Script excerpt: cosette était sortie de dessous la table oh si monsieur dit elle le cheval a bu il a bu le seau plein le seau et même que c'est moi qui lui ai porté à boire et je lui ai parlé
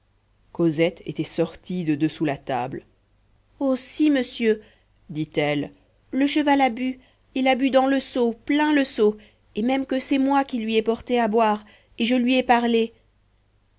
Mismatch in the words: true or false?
true